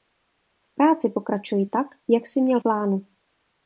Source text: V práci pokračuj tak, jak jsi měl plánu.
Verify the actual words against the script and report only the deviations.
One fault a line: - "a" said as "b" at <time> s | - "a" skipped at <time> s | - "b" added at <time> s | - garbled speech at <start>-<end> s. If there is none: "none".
none